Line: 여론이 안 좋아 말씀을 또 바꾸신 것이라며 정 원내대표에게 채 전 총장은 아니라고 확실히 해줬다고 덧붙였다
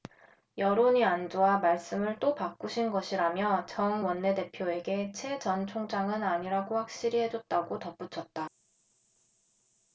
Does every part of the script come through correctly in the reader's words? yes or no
yes